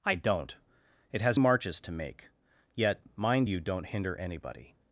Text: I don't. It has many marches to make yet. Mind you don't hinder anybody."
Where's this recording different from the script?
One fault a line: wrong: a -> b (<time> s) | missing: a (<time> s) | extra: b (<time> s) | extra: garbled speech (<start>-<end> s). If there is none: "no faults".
missing: many (1.4 s)